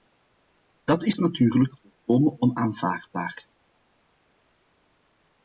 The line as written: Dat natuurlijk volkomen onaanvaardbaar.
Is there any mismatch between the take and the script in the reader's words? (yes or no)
yes